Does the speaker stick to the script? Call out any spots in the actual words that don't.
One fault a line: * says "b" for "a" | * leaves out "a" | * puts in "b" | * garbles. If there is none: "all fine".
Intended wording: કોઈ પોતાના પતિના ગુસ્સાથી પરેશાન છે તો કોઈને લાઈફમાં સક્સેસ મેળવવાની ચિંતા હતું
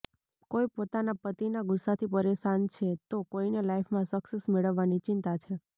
* says "છે" for "હતું"